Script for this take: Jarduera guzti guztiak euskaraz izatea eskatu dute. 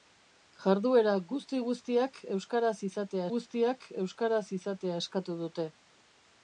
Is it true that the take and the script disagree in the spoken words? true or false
true